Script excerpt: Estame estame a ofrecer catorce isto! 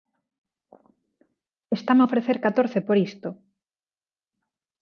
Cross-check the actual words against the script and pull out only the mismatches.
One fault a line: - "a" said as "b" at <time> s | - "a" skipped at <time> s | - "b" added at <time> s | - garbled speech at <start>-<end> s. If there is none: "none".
- "estame" skipped at 2.0 s
- "por" added at 2.9 s